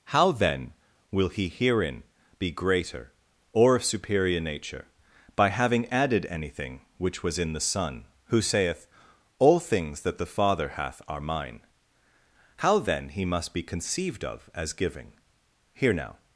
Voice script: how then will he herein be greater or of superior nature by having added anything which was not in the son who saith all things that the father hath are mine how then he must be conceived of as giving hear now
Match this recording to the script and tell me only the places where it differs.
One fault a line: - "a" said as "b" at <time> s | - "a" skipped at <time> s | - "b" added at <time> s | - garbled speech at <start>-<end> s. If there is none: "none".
- "not" skipped at 7.4 s